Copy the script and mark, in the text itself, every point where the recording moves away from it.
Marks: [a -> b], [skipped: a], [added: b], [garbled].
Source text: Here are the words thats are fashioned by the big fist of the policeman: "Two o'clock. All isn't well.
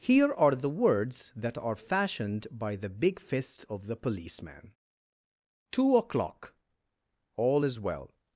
Here are the words [thats -> that] are fashioned by the big fist of the policeman: "Two o'clock. All [isn't -> is] well.